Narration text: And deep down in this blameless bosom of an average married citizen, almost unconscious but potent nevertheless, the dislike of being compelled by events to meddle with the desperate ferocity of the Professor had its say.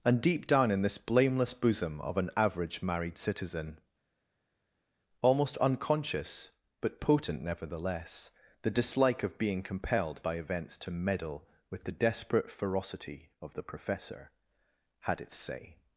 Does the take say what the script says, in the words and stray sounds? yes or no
yes